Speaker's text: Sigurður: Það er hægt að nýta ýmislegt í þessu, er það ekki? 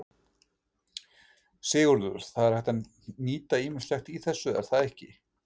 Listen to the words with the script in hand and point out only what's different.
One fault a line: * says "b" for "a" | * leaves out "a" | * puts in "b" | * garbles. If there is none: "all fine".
all fine